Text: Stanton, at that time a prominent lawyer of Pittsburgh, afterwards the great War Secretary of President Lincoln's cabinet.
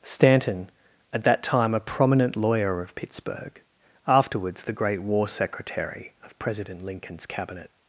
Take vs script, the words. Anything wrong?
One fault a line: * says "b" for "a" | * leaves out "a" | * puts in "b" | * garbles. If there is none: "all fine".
all fine